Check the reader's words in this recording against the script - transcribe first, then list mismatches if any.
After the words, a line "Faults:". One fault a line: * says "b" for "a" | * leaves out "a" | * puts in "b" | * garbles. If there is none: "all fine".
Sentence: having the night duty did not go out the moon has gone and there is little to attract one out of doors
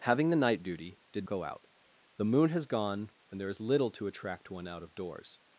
having the night duty did go out the moon has gone and there is little to attract one out of doors
Faults:
* leaves out "not"